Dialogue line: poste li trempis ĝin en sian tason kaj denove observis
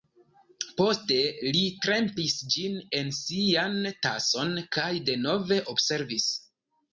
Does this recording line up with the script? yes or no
yes